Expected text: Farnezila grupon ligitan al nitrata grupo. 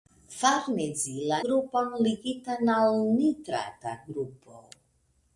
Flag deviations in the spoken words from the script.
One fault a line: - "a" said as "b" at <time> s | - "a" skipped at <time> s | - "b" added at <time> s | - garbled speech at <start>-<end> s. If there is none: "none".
none